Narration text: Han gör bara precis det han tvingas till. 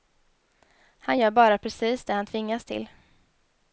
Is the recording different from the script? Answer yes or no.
no